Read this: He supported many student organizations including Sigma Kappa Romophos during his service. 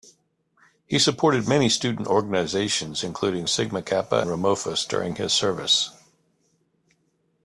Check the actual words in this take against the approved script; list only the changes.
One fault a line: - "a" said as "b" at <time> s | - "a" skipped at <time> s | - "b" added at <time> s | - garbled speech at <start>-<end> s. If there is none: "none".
none